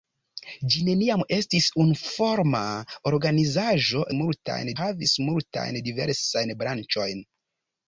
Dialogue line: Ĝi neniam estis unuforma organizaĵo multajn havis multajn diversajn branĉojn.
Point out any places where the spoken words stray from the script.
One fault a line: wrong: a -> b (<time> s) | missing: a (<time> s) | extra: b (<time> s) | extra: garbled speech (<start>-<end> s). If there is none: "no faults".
no faults